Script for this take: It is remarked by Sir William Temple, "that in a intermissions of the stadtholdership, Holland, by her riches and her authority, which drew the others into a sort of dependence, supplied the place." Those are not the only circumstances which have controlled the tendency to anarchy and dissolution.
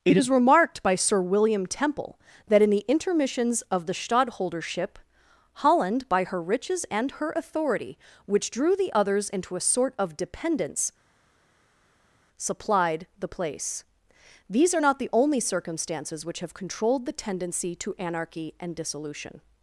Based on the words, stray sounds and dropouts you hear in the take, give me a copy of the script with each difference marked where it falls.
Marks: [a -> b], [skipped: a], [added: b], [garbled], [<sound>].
It is remarked by Sir William Temple, "that in [a -> the] intermissions of the stadtholdership, Holland, by her riches and her authority, which drew the others into a sort of dependence, supplied the place." [Those -> These] are not the only circumstances which have controlled the tendency to anarchy and dissolution.